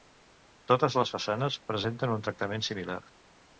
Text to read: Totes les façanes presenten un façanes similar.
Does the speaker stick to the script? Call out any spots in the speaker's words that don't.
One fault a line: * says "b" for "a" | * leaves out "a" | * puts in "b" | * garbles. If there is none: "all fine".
* says "tractament" for "façanes"